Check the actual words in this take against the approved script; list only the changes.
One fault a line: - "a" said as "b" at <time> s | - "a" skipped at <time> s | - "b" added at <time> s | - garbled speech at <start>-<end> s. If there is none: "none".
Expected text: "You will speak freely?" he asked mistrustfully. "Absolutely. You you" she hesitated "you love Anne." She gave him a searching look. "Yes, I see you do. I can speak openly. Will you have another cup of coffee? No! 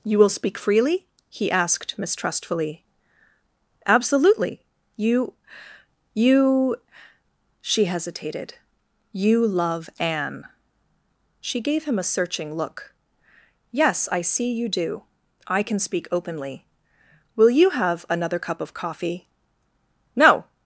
none